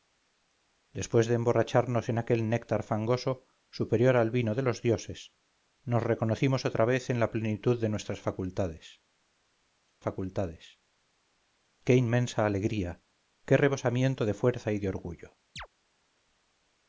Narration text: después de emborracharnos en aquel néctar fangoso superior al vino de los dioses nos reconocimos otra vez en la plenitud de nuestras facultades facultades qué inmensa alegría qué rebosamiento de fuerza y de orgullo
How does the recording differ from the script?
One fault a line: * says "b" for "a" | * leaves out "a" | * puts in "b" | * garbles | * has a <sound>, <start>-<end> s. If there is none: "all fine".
* has a chirp, 15.6-15.7 s